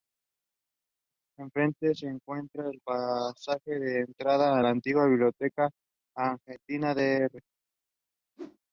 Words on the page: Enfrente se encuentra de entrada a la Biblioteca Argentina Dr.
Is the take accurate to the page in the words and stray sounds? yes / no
no